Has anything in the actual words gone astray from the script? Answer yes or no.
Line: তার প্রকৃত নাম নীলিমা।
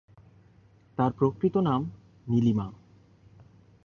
no